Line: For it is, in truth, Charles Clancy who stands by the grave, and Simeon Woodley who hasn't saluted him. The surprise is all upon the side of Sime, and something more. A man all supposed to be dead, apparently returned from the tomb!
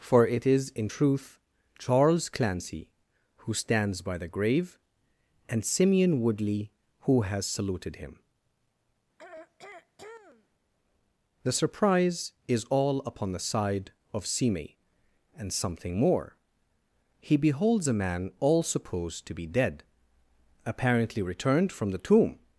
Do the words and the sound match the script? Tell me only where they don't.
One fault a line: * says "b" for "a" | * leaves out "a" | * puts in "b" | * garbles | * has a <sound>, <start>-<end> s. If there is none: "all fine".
* says "has" for "hasn't"
* has a throat clearing, 9.2-10.5 s
* puts in "He beholds"